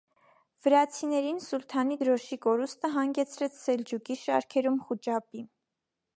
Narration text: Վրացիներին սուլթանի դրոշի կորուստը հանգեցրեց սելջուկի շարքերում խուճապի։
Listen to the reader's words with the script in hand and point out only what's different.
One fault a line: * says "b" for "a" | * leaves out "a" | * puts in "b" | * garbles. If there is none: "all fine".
all fine